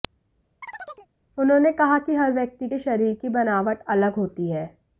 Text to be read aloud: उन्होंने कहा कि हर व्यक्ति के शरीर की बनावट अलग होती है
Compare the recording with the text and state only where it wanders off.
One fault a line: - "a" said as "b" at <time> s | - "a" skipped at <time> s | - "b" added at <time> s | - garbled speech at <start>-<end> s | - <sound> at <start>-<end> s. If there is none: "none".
- chirp at 0.6-1.1 s